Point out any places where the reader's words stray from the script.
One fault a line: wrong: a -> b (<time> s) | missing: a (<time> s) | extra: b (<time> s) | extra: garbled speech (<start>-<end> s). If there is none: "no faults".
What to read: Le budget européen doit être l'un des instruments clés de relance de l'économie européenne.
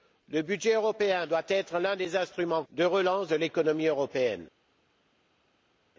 missing: clés (2.6 s)